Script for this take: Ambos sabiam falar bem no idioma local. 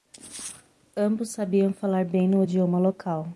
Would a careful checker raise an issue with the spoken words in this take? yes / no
no